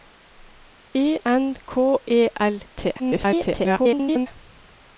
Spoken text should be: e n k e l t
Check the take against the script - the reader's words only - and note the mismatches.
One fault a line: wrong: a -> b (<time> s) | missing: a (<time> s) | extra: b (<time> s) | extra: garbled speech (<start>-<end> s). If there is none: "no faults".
extra: garbled speech (3.0-4.3 s)